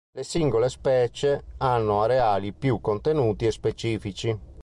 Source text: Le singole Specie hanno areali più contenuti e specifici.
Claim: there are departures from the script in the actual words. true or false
false